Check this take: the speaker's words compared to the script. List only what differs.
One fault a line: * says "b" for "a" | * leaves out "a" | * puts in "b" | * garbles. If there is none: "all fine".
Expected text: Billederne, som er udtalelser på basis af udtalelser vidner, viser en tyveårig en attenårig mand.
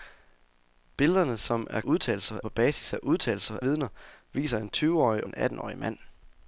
all fine